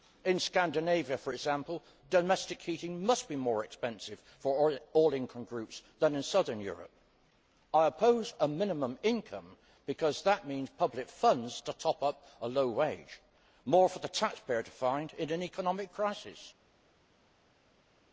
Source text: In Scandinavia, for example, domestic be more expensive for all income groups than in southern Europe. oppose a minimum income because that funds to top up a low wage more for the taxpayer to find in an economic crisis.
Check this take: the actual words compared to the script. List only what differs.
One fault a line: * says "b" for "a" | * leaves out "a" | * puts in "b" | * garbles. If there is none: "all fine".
* puts in "heating must"
* puts in "I"
* puts in "means public"